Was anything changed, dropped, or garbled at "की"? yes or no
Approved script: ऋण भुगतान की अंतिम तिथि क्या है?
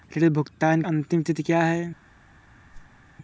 yes